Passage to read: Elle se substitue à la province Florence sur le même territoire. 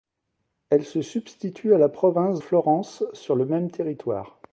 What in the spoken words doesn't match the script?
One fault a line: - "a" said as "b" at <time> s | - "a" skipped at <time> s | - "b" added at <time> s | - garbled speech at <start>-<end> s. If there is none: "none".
none